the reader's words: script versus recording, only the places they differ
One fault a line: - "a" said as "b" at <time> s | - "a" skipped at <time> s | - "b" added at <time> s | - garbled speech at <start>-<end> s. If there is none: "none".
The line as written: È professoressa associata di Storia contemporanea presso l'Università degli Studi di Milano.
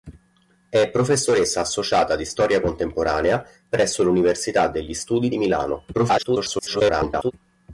- garbled speech at 5.9-7.3 s